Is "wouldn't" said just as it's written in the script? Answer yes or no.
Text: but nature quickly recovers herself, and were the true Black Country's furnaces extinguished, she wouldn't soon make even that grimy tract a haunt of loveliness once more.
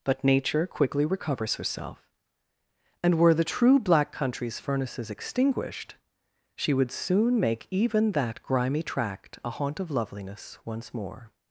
no